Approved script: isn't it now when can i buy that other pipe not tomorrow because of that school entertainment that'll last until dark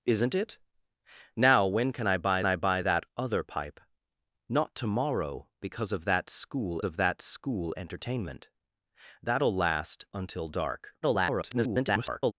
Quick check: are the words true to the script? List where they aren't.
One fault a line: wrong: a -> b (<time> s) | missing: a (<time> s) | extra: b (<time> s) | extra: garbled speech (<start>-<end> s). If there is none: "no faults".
extra: i buy (2.5 s)
extra: of that school (6.8 s)
extra: garbled speech (11.0-12.3 s)